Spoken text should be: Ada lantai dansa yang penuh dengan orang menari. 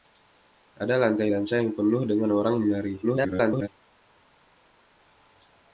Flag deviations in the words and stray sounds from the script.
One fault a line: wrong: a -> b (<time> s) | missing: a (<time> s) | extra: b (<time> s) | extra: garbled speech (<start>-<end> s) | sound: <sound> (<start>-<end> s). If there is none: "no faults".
extra: garbled speech (3.0-3.7 s)